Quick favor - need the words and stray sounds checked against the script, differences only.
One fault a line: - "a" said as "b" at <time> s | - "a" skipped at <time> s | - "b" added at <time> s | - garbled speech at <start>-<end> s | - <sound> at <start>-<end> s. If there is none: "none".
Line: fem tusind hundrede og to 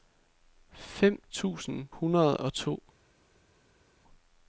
none